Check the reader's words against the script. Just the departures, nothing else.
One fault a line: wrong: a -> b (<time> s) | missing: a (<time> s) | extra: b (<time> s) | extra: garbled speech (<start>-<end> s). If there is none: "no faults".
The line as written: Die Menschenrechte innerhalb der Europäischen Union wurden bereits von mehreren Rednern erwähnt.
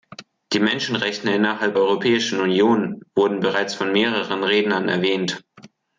missing: der (1.8 s)